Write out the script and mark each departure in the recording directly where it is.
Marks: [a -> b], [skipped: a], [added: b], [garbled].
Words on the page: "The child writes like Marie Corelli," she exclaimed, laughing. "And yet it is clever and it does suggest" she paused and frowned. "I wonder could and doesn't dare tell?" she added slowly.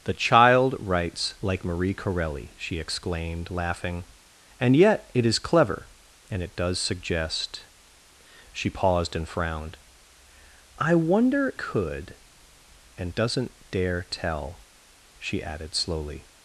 "The child writes like Marie Corelli," she exclaimed, laughing. "And yet it is clever and it does suggest" she paused and frowned. "I wonder could and doesn't dare tell?" she added slowly.